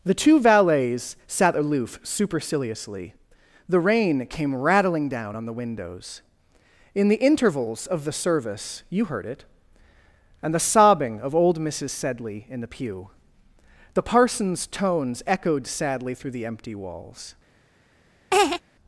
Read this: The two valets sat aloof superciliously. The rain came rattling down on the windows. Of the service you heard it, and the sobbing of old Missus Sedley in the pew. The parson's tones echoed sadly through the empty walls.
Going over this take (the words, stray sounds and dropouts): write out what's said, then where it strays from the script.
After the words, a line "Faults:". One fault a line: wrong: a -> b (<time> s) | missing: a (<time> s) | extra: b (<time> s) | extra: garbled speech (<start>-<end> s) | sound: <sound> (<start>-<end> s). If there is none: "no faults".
The two valets sat aloof superciliously. The rain came rattling down on the windows. In the intervals of the service you heard it, and the sobbing of old Missus Sedley in the pew. The parson's tones echoed sadly through the empty walls.
Faults:
extra: In the intervals (6.9 s)
sound: laugh (18.3-18.6 s)